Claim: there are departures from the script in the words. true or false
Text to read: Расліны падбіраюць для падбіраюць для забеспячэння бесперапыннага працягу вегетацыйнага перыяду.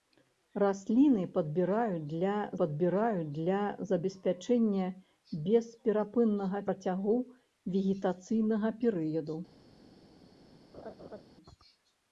false